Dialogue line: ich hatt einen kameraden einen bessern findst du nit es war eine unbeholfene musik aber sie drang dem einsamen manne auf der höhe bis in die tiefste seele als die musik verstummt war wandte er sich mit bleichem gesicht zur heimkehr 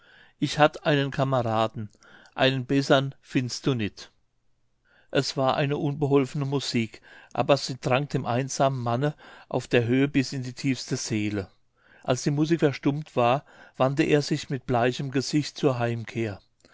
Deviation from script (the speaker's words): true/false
false